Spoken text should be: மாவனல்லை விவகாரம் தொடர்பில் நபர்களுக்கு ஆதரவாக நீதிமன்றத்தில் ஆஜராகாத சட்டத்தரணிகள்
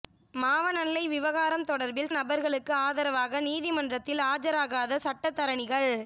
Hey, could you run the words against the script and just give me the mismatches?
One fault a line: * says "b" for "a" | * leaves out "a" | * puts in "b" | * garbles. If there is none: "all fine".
all fine